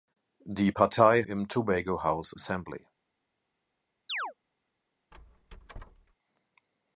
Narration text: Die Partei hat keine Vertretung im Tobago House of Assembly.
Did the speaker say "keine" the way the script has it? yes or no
no